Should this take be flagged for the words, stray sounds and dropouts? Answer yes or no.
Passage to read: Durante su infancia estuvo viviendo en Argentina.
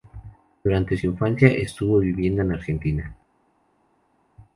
no